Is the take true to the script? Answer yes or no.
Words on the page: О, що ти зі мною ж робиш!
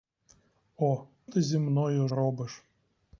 no